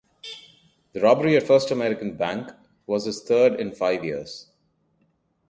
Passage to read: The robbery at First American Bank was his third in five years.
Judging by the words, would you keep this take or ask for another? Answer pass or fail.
pass